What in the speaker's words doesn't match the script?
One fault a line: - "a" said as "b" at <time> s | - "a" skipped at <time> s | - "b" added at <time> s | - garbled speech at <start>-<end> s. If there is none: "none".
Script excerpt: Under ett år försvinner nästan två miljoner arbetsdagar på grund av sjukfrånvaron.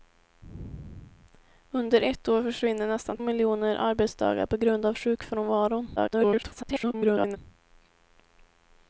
- "två" skipped at 3.2 s
- garbled speech at 6.0-7.4 s